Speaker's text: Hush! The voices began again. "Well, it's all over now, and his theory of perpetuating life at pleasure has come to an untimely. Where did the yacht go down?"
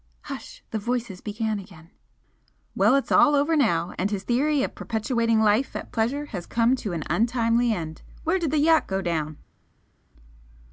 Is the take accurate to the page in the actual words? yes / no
no